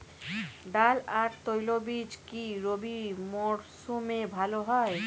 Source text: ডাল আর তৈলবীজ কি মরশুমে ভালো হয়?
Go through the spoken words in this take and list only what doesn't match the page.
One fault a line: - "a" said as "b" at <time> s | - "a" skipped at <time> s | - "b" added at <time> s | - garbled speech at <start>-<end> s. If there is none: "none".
- "রবি" added at 2.6 s